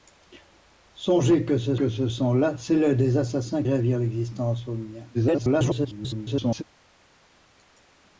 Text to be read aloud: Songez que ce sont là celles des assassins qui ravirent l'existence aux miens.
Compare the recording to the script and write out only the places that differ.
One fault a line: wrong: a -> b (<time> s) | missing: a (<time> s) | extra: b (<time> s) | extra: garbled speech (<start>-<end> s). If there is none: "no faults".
extra: que ce (1.8 s)
missing: qui (3.6 s)
extra: garbled speech (5.1-6.6 s)